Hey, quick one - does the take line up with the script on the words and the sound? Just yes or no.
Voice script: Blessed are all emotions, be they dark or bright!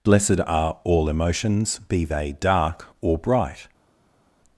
yes